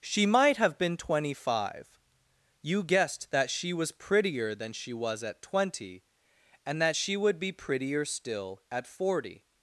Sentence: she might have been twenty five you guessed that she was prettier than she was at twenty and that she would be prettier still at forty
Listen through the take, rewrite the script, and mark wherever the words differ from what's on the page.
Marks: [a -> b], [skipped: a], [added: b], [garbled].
she might have been twenty five you guessed that she was prettier than she was at twenty and that she would be prettier still at forty